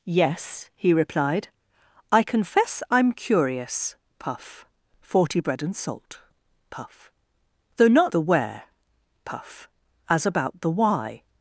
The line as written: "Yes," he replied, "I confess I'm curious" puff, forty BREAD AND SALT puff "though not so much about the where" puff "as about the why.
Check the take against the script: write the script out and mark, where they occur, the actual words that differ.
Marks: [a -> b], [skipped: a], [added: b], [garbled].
"Yes," he replied, "I confess I'm curious" puff, forty BREAD AND SALT puff "though not [skipped: so much about] the where" puff "as about the why.